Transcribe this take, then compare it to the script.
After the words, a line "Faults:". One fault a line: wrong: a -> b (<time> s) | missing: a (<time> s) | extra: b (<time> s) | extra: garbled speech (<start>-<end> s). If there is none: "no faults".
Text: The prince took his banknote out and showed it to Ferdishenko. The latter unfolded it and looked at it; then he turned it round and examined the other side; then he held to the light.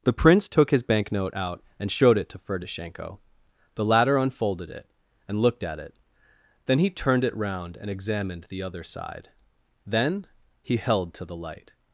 The prince took his banknote out and showed it to Ferdishenko. The latter unfolded it and looked at it; then he turned it round and examined the other side; then he held to the light.
Faults:
no faults